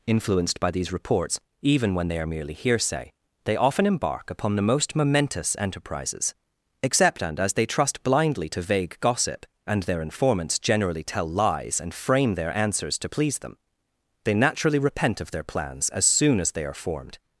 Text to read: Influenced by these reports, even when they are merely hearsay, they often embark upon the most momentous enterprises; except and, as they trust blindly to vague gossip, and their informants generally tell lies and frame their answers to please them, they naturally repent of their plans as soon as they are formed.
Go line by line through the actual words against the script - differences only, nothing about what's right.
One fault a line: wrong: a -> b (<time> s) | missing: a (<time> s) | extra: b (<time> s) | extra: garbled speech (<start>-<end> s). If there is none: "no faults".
no faults